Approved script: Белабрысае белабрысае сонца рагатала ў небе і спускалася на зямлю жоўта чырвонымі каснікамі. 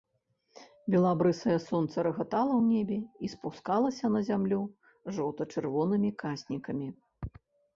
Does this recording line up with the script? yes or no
no